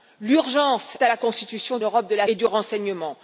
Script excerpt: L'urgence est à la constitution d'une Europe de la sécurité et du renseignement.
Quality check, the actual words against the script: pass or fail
fail